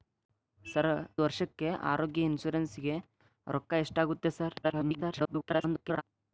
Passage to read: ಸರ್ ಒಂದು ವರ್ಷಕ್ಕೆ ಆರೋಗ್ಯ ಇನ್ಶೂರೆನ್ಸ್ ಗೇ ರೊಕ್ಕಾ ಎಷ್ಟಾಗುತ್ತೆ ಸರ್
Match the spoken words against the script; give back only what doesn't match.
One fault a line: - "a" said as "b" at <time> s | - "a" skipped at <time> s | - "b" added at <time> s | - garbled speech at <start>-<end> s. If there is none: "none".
- "ಒಂದು" skipped at 0.9 s
- garbled speech at 4.6-6.0 s